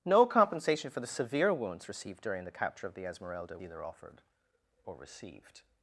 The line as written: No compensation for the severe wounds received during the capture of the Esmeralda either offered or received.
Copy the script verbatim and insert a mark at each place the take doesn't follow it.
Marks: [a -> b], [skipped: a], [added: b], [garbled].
No compensation for the severe wounds received during the capture of the Esmeralda either offered or received.